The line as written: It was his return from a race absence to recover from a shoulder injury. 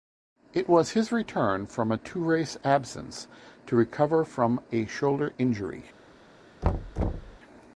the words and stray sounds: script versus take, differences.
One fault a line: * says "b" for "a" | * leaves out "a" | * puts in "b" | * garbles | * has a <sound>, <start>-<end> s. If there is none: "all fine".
* puts in "two"
* has a thud, 6.6-7.4 s